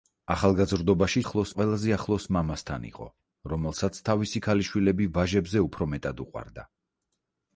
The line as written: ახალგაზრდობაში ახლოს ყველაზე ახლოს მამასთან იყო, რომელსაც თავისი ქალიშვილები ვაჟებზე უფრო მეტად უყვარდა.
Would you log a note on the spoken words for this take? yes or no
no